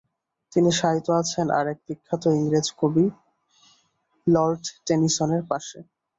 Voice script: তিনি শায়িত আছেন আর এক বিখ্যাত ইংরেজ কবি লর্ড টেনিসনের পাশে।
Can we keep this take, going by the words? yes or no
yes